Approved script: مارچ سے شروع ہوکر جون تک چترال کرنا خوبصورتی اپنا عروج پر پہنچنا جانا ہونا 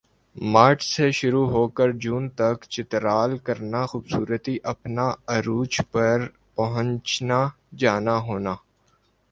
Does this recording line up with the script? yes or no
yes